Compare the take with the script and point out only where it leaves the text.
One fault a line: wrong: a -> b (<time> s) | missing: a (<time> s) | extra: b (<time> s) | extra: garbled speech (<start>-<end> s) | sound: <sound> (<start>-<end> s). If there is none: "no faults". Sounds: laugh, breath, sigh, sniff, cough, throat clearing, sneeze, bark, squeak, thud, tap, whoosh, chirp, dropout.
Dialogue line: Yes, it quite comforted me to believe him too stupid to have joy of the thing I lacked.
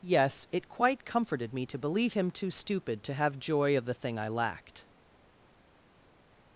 no faults